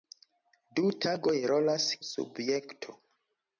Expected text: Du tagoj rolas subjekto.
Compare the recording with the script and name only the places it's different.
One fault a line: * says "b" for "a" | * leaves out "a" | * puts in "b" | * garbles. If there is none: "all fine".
all fine